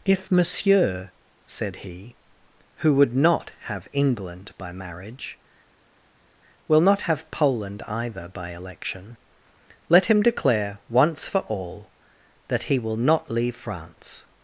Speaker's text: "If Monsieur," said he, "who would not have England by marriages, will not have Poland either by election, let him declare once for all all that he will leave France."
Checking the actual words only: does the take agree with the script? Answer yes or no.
no